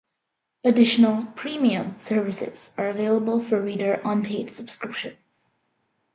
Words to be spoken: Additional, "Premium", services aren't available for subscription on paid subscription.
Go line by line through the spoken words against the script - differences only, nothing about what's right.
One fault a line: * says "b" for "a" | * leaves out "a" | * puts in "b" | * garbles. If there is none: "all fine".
* says "are" for "aren't"
* says "reader" for "subscription"